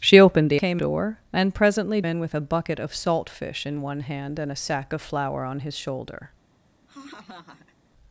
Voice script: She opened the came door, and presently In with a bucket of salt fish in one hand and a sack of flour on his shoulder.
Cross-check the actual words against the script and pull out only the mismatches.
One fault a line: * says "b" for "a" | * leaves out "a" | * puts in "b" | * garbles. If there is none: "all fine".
all fine